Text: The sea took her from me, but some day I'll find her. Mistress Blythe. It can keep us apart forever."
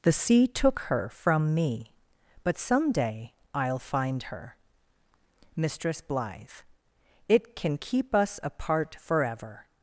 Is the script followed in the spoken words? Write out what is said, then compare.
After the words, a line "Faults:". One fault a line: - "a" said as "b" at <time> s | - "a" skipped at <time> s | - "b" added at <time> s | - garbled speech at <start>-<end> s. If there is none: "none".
The sea took her from me, but some day I'll find her. Mistress Blythe. It can keep us apart forever."
Faults:
none